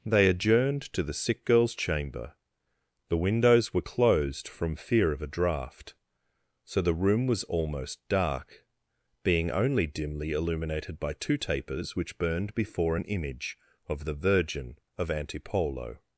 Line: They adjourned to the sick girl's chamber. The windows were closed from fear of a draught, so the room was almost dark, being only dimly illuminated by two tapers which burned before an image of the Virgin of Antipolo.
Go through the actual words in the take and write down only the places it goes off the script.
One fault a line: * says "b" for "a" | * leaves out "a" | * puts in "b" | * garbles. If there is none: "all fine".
all fine